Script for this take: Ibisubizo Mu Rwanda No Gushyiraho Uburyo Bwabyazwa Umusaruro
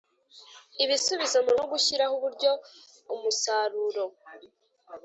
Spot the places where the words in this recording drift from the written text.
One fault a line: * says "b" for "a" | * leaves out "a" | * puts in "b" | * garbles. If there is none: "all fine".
* leaves out "Rwanda"
* leaves out "Bwabyazwa"